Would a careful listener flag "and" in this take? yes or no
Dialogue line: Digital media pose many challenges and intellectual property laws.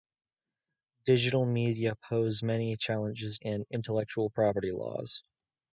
no